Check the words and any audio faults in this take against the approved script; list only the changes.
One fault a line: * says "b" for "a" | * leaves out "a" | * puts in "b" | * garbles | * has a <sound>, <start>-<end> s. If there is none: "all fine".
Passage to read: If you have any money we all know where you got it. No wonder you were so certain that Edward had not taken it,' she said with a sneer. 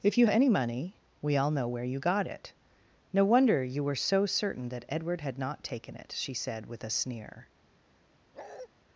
* leaves out "have"
* has a bark, 8.3-8.7 s